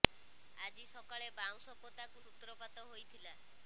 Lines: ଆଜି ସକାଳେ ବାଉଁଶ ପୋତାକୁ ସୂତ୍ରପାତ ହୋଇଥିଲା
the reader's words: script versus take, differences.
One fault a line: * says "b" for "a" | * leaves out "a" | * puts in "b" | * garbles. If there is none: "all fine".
all fine